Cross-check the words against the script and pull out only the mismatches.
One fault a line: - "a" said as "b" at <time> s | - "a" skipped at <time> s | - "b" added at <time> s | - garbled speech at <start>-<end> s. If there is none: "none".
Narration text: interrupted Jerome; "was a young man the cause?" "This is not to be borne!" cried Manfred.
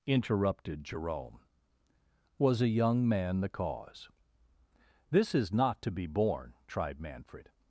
- "cried" said as "tried" at 6.7 s